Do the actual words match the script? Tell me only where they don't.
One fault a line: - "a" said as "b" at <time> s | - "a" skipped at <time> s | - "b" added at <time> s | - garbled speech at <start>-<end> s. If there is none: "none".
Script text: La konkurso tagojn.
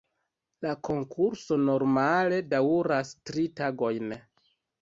- "normale daŭras tri" added at 1.7 s